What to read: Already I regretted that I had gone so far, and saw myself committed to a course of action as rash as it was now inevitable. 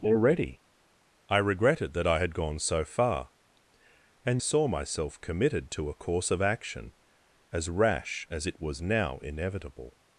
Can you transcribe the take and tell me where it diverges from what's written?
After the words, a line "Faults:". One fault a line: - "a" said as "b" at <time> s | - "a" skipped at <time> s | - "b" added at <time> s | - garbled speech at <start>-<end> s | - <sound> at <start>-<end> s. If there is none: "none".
Already I regretted that I had gone so far, and saw myself committed to a course of action as rash as it was now inevitable.
Faults:
none